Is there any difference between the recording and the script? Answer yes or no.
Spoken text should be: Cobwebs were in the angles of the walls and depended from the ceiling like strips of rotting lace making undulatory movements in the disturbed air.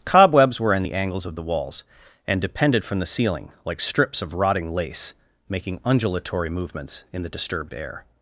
no